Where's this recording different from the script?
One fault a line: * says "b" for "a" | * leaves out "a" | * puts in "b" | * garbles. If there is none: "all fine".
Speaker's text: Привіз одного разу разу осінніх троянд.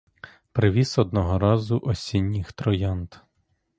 * leaves out "разу"